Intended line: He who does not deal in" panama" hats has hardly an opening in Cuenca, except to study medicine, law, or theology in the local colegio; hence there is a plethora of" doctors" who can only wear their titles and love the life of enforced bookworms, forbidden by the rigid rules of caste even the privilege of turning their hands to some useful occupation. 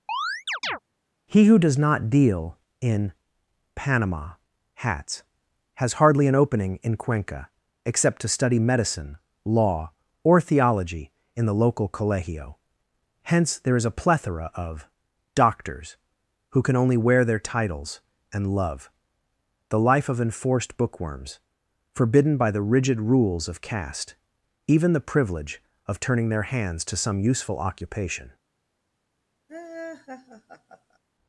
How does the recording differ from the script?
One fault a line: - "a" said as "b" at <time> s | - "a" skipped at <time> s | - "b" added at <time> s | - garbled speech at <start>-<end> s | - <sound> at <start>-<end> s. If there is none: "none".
- chirp at 0.1-0.8 s
- laugh at 29.5-31.0 s